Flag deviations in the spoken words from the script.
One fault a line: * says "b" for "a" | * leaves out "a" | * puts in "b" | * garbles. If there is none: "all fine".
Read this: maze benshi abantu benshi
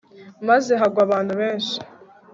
* says "hagwa" for "benshi"